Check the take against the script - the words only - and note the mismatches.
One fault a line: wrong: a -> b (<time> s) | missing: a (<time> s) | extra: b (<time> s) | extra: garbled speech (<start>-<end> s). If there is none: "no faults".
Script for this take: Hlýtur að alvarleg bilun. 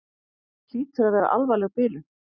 extra: vera (1.2 s)